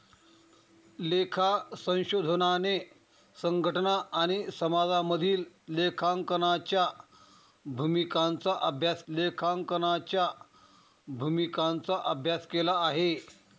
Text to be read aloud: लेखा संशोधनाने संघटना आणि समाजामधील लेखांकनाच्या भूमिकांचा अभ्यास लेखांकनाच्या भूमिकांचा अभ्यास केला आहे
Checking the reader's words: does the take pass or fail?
pass